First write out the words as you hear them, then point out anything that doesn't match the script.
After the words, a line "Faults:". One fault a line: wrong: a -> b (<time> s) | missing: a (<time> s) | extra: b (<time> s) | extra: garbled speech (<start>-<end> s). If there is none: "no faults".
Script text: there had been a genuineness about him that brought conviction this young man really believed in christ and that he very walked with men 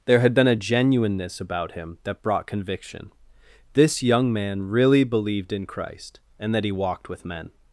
there had been a genuineness about him that brought conviction this young man really believed in christ and that he walked with men
Faults:
missing: very (6.7 s)